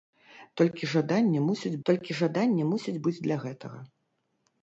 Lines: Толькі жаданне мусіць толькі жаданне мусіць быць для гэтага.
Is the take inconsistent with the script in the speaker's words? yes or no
no